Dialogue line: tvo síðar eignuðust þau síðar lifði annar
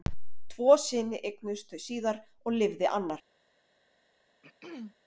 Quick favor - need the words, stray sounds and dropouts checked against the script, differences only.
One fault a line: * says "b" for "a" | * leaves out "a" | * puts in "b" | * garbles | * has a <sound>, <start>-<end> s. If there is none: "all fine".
* says "syni" for "síðar"
* puts in "og"
* has a throat clearing, 4.4-5.0 s